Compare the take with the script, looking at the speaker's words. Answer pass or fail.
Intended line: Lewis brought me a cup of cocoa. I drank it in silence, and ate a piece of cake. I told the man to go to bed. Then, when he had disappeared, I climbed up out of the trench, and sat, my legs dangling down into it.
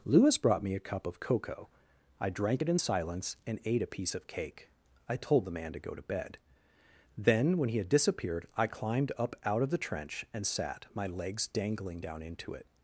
pass